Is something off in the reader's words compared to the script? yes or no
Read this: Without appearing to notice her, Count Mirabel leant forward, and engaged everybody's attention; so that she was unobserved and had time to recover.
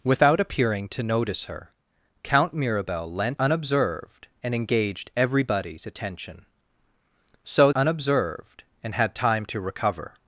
yes